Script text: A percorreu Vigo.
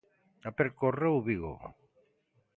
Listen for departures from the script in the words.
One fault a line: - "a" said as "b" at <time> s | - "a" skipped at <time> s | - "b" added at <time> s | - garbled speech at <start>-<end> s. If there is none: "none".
none